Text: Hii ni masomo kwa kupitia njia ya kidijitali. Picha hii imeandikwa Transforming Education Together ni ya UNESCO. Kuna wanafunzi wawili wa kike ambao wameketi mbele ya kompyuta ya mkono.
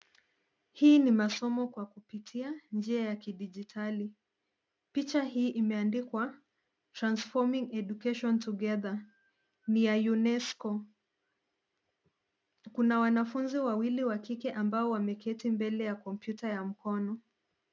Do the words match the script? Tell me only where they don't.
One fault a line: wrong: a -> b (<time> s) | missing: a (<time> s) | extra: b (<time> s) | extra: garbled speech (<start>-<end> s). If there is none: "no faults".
no faults